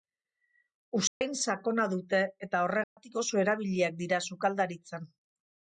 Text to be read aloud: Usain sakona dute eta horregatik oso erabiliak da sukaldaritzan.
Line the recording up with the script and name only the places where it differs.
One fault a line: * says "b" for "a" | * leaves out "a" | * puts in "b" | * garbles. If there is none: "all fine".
* says "dira" for "da"